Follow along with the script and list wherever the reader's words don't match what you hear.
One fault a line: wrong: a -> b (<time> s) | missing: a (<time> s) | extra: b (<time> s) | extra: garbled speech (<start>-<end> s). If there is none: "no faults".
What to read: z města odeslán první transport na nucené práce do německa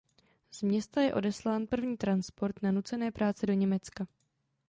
extra: je (1.0 s)